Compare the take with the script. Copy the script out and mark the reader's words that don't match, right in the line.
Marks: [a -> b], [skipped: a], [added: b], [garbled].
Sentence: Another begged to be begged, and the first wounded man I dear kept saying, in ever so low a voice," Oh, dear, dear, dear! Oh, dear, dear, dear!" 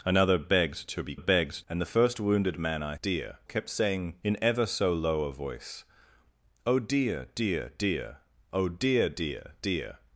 Another begged to be begged, and the first wounded man I dear kept saying, in ever so low a voice," Oh, dear, dear, dear! Oh, dear, dear, dear!"